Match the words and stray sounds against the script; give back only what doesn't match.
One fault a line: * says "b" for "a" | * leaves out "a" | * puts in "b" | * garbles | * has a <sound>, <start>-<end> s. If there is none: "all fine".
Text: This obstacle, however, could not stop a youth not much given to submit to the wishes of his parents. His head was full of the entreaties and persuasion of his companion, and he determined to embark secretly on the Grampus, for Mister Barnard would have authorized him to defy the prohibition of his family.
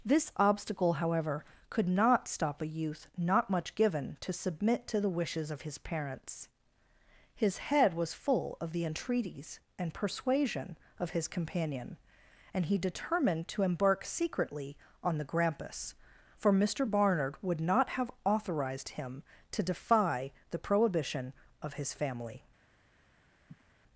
* puts in "not"
* has a sniff, 23.5-23.6 s